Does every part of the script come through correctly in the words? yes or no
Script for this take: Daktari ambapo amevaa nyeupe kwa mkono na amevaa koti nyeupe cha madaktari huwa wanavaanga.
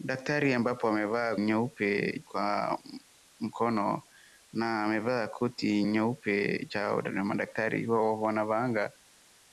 yes